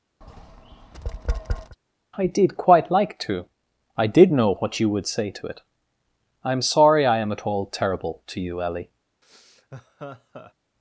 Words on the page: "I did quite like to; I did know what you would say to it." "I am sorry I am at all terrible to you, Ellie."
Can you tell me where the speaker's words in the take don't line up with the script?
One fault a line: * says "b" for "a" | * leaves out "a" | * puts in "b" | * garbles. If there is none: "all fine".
all fine